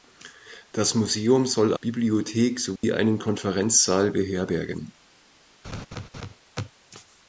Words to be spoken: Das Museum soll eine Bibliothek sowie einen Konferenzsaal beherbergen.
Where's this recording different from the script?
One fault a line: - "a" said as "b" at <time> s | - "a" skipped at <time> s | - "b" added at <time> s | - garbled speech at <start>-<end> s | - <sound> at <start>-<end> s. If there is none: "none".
- "eine" skipped at 1.8 s
- dropout at 2.8-2.8 s
- laugh at 5.6-6.4 s